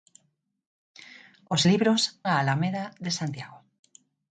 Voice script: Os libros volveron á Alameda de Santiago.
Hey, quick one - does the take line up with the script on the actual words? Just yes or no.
no